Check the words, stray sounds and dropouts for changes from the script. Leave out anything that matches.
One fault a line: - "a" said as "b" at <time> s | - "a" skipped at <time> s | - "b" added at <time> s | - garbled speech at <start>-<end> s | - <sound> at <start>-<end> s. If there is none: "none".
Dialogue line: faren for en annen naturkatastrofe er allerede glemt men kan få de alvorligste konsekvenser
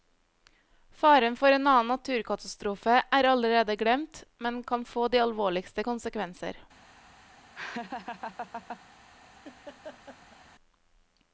- laugh at 7.5-8.8 s
- laugh at 9.4-10.4 s